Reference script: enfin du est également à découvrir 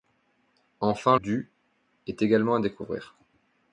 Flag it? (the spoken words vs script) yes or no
no